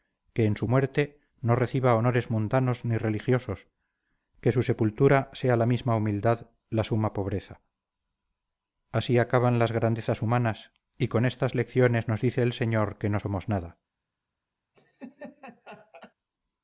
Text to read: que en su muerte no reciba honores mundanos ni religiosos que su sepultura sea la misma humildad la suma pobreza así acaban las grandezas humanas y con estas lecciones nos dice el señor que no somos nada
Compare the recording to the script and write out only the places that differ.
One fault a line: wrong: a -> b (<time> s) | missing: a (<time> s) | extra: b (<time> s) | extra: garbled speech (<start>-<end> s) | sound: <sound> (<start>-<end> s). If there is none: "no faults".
sound: laugh (14.7-16.1 s)